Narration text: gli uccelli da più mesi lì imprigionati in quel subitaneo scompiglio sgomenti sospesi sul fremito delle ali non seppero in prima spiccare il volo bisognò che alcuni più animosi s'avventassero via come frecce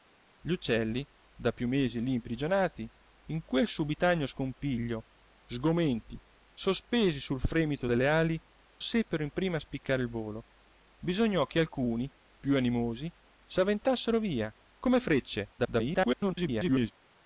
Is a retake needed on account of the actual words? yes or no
yes